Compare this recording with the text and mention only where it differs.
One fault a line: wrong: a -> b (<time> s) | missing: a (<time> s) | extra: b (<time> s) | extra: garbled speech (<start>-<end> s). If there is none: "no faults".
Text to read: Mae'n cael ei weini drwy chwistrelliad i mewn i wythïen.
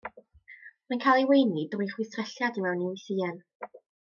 no faults